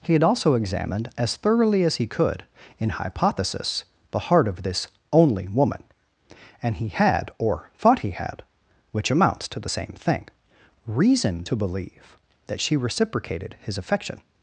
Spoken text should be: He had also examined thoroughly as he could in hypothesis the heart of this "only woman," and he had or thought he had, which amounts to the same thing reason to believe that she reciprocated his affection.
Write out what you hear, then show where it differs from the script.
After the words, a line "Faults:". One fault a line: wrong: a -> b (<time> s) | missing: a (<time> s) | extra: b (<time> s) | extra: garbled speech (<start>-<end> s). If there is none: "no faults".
He had also examined as thoroughly as he could in hypothesis the heart of this "only woman," and he had or thought he had, which amounts to the same thing reason to believe that she reciprocated his affection.
Faults:
extra: as (1.2 s)